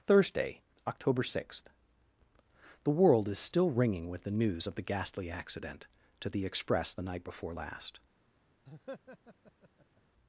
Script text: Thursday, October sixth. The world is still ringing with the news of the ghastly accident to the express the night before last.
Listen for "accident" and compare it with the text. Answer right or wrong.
right